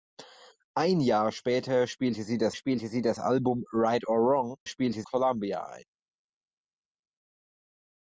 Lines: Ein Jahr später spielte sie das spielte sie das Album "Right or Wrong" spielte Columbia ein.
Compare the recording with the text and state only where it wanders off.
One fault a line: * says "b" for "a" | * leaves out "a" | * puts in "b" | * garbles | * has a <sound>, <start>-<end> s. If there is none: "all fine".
all fine